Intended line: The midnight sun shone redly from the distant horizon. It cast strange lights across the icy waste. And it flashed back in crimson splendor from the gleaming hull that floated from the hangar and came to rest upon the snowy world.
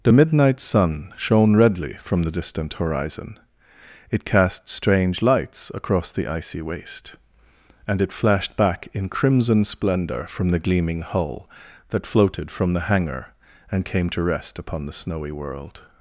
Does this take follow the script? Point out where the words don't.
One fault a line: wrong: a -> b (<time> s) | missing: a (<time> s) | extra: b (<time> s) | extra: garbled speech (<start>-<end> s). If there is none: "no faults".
no faults